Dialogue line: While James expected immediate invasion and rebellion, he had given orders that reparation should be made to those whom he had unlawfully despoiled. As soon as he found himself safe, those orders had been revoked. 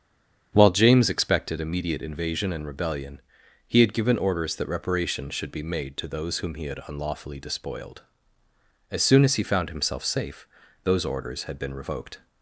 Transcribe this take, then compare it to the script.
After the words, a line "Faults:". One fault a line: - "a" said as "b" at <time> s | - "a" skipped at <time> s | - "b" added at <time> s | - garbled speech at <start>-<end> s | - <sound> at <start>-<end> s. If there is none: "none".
While James expected immediate invasion and rebellion, he had given orders that reparation should be made to those whom he had unlawfully despoiled. As soon as he found himself safe, those orders had been revoked.
Faults:
none